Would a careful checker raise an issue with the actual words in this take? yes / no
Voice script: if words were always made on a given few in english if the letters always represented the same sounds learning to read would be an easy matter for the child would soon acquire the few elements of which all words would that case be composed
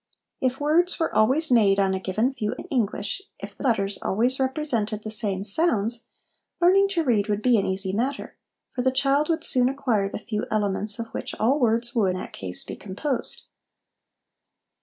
no